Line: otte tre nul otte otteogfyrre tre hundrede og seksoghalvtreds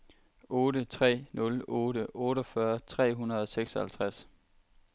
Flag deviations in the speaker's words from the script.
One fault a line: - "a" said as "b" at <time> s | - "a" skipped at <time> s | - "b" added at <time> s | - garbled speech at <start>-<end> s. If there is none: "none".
none